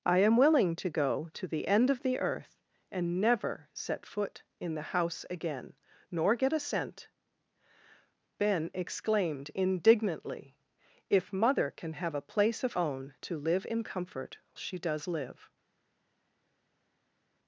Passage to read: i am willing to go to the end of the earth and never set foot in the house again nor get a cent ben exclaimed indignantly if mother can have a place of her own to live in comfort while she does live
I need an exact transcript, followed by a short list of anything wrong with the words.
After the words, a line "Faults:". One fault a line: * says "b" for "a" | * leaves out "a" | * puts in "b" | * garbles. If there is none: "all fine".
i am willing to go to the end of the earth and never set foot in the house again nor get a cent ben exclaimed indignantly if mother can have a place of own to live in comfort she does live
Faults:
* leaves out "her"
* leaves out "while"